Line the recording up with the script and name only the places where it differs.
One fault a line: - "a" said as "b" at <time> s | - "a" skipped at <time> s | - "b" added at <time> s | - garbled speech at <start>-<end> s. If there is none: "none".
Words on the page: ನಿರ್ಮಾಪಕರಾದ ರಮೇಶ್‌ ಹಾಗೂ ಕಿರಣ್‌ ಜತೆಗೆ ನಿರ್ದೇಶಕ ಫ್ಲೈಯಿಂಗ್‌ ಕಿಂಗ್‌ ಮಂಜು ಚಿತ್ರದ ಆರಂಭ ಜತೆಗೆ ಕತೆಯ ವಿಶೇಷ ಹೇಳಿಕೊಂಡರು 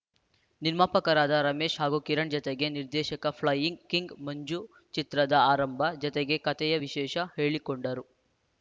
none